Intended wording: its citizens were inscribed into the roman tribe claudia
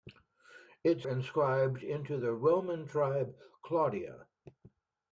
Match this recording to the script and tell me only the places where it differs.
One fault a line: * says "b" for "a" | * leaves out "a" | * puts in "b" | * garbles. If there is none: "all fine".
* leaves out "citizens were"